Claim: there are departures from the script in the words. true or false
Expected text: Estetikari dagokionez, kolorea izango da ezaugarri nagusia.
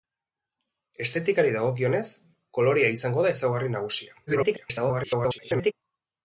true